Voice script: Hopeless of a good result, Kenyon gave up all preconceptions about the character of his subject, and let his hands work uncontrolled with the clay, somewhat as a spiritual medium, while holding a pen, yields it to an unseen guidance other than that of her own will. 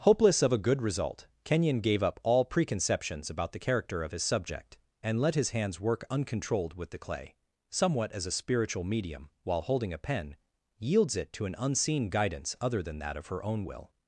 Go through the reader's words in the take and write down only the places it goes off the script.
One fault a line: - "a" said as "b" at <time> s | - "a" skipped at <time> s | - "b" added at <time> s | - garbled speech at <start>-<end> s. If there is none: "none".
none